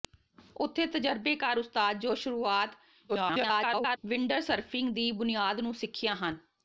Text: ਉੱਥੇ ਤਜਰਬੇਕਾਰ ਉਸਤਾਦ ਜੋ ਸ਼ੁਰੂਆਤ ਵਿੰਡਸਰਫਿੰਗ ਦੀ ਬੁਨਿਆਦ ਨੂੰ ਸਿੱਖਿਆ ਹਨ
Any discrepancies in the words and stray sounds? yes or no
yes